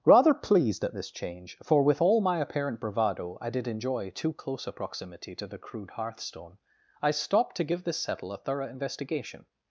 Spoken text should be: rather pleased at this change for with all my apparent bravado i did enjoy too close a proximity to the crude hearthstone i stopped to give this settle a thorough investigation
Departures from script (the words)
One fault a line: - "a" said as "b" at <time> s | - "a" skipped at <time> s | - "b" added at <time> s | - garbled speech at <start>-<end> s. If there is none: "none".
none